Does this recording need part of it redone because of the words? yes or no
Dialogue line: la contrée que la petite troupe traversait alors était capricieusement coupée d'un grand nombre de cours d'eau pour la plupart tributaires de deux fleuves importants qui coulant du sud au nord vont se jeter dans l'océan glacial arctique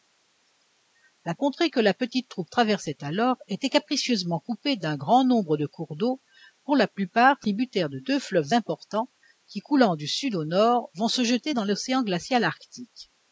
no